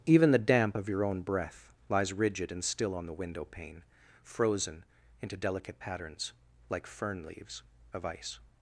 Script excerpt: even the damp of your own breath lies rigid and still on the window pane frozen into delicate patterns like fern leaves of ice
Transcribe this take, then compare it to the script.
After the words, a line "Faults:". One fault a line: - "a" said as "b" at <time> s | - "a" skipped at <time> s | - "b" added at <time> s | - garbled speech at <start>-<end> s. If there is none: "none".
even the damp of your own breath lies rigid and still on the window pane frozen into delicate patterns like fern leaves of ice
Faults:
none